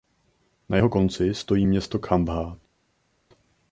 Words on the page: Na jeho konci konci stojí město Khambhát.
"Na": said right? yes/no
yes